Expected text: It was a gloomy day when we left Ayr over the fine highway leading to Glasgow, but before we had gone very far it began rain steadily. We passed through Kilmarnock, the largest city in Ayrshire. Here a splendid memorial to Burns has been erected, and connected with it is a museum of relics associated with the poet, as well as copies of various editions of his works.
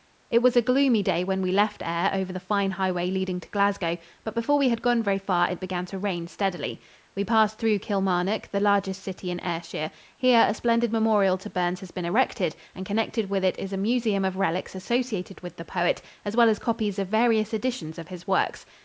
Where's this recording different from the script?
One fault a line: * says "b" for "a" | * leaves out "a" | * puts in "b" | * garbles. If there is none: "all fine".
* puts in "to"